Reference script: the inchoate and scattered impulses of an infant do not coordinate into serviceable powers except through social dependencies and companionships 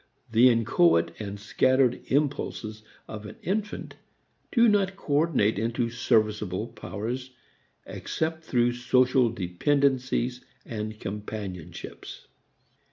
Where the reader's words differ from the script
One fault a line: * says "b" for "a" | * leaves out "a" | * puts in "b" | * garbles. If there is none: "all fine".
all fine